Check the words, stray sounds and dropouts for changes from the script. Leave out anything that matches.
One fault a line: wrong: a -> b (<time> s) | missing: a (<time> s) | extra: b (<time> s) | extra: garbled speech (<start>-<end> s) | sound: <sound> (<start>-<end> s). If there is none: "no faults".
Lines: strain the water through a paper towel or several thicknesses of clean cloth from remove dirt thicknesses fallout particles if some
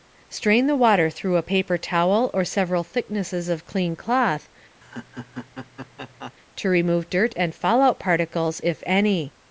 sound: laugh (4.8-6.3 s)
wrong: from -> to (6.6 s)
wrong: thicknesses -> and (7.4 s)
wrong: some -> any (8.9 s)